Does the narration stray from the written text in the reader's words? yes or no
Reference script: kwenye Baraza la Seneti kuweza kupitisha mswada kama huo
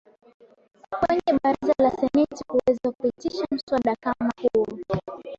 no